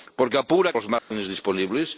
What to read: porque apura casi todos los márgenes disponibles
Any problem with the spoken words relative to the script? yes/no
yes